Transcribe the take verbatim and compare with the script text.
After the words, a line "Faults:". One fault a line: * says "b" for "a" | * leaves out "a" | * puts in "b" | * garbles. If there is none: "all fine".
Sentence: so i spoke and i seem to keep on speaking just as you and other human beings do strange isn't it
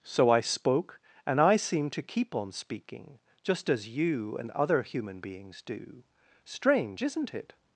so i spoke and i seem to keep on speaking just as you and other human beings do strange isn't it
Faults:
all fine